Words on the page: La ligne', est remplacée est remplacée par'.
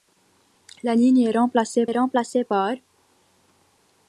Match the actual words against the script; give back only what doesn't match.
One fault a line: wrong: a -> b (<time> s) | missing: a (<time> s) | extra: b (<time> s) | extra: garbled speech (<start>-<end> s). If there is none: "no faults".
no faults